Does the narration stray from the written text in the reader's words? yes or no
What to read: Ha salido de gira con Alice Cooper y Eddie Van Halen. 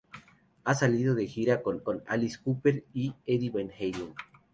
yes